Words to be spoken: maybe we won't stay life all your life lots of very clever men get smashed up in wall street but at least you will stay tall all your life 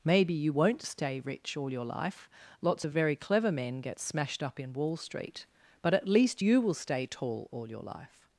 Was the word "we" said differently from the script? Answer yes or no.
yes